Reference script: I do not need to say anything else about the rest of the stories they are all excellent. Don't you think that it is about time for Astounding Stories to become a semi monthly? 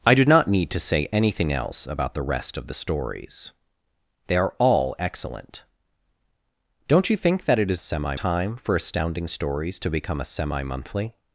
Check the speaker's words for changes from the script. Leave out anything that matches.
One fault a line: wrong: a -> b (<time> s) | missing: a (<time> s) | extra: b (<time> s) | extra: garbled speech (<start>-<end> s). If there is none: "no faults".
wrong: about -> semi (7.8 s)